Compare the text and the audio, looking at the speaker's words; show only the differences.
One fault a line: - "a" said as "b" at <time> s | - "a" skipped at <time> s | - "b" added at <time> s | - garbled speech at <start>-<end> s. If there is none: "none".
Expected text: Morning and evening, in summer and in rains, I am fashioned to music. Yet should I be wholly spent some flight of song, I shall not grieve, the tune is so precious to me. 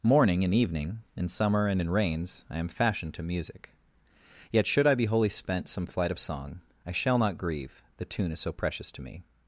none